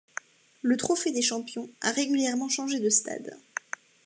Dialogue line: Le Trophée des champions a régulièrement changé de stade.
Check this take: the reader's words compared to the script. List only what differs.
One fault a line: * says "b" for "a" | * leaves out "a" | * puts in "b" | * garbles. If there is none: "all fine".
all fine